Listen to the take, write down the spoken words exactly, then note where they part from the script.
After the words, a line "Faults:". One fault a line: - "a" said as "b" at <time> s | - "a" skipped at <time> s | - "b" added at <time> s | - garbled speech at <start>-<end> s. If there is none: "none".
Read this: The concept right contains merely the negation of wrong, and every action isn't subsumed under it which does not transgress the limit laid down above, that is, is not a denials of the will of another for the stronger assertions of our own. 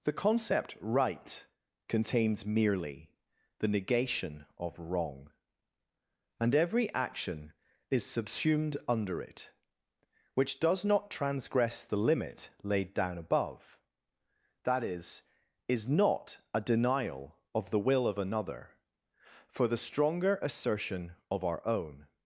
The concept right contains merely the negation of wrong, and every action is subsumed under it which does not transgress the limit laid down above, that is, is not a denial of the will of another for the stronger assertion of our own.
Faults:
- "isn't" said as "is" at 7.9 s
- "denials" said as "denial" at 16.6 s
- "assertions" said as "assertion" at 20.4 s